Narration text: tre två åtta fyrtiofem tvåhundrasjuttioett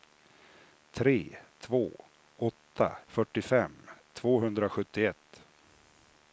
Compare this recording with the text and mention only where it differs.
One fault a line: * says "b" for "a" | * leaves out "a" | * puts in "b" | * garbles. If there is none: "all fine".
all fine